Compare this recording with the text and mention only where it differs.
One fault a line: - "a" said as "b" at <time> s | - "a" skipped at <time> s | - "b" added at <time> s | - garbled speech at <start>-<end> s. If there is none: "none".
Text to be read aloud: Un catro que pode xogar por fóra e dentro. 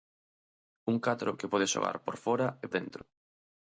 none